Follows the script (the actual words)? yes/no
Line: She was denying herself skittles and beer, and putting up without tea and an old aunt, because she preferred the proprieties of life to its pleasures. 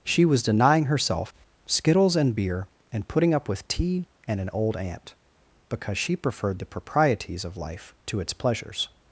no